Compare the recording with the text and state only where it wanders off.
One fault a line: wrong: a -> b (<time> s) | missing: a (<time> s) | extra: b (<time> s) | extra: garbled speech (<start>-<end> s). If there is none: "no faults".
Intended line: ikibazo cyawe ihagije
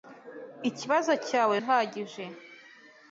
no faults